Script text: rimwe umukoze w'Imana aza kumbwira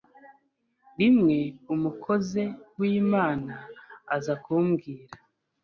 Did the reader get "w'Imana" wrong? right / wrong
right